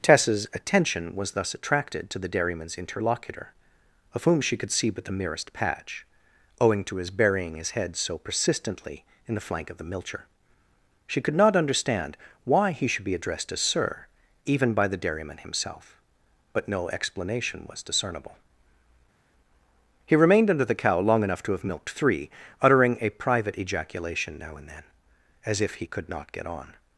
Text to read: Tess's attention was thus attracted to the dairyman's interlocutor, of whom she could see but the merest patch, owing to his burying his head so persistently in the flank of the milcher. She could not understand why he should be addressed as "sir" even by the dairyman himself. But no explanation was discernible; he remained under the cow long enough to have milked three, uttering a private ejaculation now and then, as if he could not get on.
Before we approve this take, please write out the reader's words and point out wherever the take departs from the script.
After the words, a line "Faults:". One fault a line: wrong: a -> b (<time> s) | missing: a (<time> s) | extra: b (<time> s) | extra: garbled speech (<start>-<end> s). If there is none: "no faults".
Tess's attention was thus attracted to the dairyman's interlocutor, of whom she could see but the merest patch, owing to his burying his head so persistently in the flank of the milcher. She could not understand why he should be addressed as "sir" even by the dairyman himself. But no explanation was discernible; he remained under the cow long enough to have milked three, uttering a private ejaculation now and then, as if he could not get on.
Faults:
no faults